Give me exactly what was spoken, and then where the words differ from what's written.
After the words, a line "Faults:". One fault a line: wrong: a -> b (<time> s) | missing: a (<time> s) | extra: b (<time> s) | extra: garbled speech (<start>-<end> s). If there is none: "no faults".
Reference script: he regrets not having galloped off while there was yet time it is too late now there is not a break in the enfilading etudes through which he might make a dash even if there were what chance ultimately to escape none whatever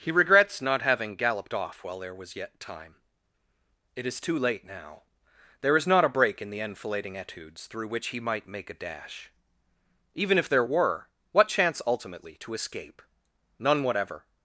he regrets not having galloped off while there was yet time it is too late now there is not a break in the enfilading etudes through which he might make a dash even if there were what chance ultimately to escape none whatever
Faults:
no faults